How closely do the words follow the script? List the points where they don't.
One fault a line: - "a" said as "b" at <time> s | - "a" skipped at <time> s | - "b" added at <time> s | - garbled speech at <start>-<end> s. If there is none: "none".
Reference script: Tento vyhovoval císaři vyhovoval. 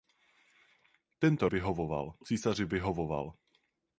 none